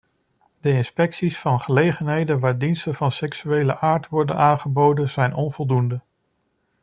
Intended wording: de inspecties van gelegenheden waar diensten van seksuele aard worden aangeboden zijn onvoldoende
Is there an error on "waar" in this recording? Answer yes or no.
no